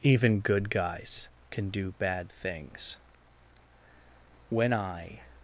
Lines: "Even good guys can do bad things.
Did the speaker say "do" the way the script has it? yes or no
yes